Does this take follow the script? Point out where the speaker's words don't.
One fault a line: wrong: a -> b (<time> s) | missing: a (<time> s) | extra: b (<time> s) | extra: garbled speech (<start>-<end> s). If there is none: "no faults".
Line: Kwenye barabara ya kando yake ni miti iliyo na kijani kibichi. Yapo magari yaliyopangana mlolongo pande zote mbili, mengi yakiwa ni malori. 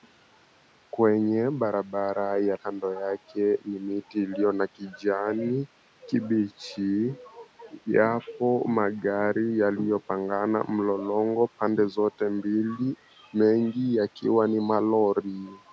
no faults